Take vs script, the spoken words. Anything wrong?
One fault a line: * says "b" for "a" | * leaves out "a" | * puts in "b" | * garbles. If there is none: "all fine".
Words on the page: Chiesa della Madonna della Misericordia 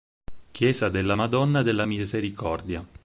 all fine